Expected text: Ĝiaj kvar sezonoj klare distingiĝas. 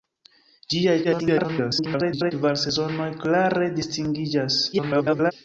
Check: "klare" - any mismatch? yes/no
no